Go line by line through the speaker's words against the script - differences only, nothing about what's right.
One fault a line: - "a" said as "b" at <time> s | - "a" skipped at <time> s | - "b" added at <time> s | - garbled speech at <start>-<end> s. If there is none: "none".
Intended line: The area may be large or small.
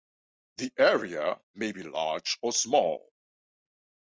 none